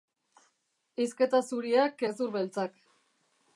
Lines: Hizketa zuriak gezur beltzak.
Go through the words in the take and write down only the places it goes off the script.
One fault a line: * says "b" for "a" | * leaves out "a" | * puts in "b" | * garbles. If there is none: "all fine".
all fine